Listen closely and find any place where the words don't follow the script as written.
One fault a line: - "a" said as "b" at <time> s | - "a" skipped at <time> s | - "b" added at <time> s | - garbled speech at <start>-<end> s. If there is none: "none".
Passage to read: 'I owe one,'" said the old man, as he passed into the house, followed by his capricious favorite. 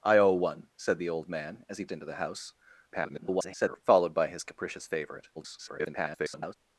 - "passed" skipped at 1.9 s
- garbled speech at 2.9-3.8 s
- garbled speech at 5.4-6.5 s